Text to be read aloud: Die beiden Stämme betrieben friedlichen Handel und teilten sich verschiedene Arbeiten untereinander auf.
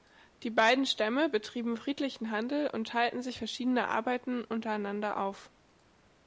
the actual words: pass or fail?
pass